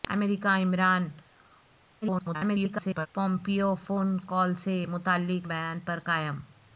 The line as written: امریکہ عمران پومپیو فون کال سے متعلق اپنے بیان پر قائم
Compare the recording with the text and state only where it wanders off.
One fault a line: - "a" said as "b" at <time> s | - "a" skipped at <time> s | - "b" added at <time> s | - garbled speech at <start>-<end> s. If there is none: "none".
- garbled speech at 2.0-3.1 s
- "اپنے" skipped at 5.5 s